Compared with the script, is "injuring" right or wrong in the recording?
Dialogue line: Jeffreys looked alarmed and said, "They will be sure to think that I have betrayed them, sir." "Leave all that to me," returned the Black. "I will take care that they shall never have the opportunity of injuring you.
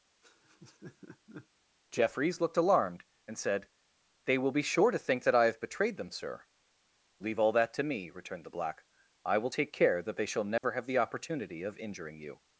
right